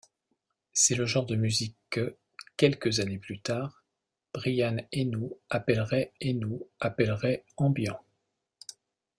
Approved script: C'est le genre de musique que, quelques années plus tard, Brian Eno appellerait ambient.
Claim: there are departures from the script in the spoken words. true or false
true